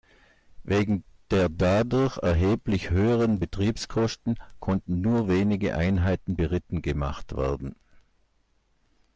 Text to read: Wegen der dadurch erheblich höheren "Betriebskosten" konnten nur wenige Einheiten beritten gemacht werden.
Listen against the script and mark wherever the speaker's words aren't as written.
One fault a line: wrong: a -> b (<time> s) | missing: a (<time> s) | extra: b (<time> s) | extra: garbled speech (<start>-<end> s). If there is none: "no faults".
no faults